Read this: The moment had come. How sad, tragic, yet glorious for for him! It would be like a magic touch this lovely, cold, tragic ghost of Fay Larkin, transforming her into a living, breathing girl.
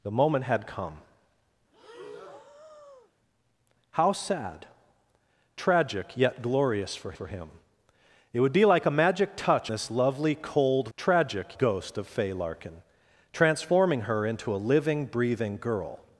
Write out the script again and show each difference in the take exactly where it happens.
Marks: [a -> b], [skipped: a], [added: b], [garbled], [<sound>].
The moment had come. [breath] How sad, tragic, yet glorious for for him! It would be like a magic touch this lovely, cold, tragic ghost of Fay Larkin, transforming her into a living, breathing girl.